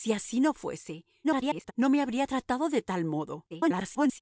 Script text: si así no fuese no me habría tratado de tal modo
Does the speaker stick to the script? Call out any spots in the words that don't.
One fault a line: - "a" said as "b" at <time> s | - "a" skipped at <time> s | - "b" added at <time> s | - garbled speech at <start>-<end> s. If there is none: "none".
- garbled speech at 1.2-1.7 s
- garbled speech at 3.5-4.2 s